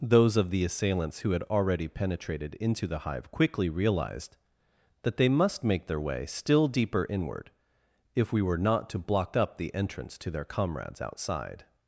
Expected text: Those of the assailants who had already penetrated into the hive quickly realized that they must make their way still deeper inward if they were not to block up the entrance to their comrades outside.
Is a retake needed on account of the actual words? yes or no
yes